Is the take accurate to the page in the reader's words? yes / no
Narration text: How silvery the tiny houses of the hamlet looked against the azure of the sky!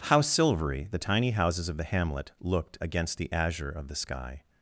yes